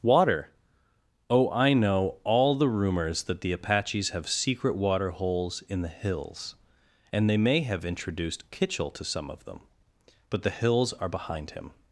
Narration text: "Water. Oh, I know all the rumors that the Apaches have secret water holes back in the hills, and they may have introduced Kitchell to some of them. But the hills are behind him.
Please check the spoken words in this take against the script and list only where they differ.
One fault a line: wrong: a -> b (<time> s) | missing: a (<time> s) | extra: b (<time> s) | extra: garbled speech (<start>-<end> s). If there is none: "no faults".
missing: back (5.6 s)